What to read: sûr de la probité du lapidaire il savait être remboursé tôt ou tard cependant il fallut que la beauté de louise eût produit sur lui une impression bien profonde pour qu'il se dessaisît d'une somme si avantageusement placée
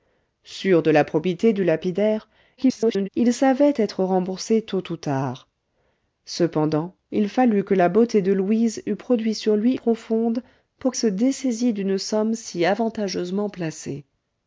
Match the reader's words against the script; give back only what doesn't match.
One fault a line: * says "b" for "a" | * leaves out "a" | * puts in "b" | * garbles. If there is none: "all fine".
* garbles
* leaves out "une impression bien"
* leaves out "qu'il"